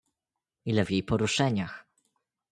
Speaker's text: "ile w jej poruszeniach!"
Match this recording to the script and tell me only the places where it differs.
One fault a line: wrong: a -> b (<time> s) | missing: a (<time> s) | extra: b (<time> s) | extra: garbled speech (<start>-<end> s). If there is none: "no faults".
no faults